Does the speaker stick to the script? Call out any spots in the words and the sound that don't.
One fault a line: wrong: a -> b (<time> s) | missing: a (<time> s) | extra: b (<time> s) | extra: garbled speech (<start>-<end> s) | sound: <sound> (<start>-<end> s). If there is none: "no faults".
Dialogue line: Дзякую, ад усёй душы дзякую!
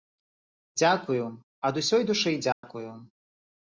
sound: dropout (2.5-2.6 s)